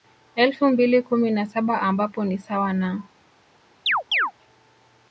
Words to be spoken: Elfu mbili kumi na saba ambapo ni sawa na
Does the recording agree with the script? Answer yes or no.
yes